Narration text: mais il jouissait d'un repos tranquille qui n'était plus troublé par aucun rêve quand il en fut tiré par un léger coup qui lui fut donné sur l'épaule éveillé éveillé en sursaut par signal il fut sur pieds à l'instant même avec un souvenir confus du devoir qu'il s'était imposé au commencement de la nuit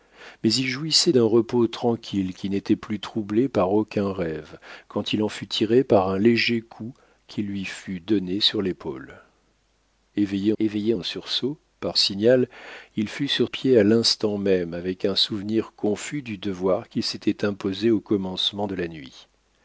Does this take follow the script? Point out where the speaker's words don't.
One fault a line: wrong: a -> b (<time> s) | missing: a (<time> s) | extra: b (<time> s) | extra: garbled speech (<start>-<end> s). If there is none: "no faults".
no faults